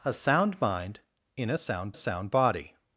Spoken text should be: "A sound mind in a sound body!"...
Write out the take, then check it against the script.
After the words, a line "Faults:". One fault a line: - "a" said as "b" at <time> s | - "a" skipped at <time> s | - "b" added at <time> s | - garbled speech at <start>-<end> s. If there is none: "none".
"A sound mind in a sound sound body!"...
Faults:
- "sound" added at 2.0 s